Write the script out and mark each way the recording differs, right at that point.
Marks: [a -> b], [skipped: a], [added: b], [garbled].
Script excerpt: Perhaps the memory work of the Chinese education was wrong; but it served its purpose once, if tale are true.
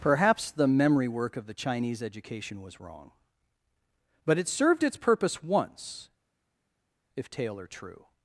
Perhaps the memory work of the Chinese education was wrong; but it served its purpose once, if tale are true.